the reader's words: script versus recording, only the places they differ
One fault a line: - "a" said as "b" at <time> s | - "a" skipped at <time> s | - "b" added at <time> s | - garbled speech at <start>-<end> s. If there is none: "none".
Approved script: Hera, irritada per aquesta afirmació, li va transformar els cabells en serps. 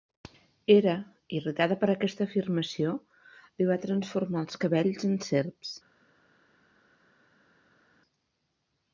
none